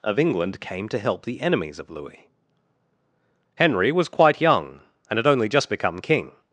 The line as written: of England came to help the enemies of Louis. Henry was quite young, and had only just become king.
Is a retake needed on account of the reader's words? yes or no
no